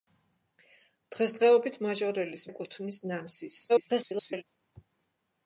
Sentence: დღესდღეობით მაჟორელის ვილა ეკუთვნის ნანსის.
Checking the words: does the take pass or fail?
fail